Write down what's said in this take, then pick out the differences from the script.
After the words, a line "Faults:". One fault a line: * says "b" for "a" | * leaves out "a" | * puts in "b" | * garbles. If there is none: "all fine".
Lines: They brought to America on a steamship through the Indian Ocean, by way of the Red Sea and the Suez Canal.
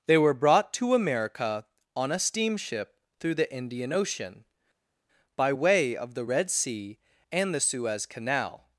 They were brought to America on a steamship through the Indian Ocean, by way of the Red Sea and the Suez Canal.
Faults:
* puts in "were"